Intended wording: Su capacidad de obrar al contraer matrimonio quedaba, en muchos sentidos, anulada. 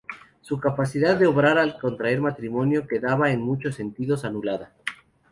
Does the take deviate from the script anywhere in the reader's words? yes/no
no